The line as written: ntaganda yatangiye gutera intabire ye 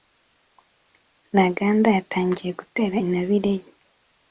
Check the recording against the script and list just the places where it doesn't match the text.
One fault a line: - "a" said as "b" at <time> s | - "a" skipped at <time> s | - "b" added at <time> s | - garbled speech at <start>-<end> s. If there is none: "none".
none